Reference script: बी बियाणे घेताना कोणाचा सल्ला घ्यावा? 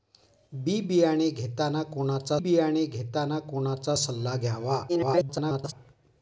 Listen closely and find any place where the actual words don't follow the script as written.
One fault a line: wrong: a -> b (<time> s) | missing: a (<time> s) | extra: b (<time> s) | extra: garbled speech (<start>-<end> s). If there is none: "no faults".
extra: बियाणे घेताना कोणाचा (2.4 s)
extra: garbled speech (4.9-5.7 s)